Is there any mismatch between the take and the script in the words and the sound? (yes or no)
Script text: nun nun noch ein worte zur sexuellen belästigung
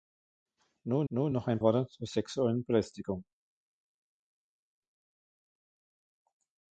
no